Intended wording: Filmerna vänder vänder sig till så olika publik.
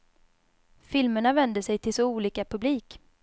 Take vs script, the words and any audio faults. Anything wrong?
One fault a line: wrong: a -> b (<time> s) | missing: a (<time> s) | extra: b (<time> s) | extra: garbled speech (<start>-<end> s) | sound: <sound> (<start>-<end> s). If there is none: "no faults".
missing: vänder (1.6 s)